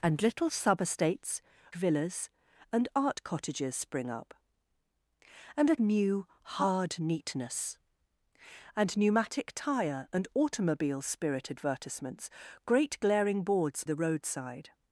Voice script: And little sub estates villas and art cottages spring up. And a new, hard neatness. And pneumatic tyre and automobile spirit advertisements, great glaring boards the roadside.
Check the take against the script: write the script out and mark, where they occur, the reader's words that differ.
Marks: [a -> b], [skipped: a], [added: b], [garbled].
And little sub estates villas and art cottages spring up. And a new, hard neatness. And pneumatic tyre and automobile spirit advertisements, great glaring boards the roadside.